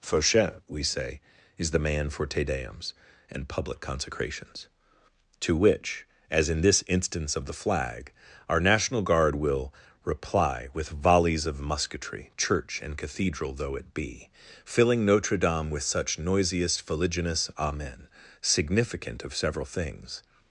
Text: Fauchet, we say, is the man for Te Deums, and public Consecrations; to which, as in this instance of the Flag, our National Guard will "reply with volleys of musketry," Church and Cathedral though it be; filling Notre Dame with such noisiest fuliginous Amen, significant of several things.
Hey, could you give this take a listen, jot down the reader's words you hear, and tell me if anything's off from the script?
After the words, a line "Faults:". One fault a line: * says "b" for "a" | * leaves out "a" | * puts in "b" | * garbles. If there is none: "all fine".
Fauchet, we say, is the man for Te Deums, and public Consecrations; to which, as in this instance of the Flag, our National Guard will "reply with volleys of musketry," Church and Cathedral though it be; filling Notre Dame with such noisiest fuliginous Amen, significant of several things.
Faults:
all fine